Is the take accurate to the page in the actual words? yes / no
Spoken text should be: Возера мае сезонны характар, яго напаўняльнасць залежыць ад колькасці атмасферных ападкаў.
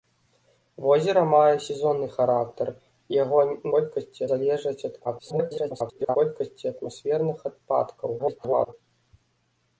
no